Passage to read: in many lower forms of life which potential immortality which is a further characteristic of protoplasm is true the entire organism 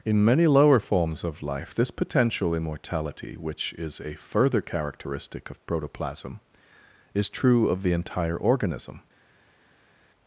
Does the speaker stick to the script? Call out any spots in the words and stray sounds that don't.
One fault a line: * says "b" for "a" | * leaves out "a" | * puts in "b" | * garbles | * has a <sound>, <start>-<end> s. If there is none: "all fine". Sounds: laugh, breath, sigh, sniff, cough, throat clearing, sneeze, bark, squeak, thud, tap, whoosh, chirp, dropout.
* says "this" for "which"
* puts in "of"